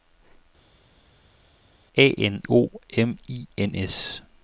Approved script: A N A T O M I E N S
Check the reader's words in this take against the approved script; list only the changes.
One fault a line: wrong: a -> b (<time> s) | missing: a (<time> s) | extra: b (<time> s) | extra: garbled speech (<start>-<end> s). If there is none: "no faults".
missing: A T (2.4 s)
missing: E (3.5 s)